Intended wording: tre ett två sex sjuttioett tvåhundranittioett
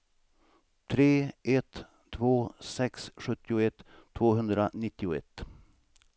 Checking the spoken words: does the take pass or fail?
pass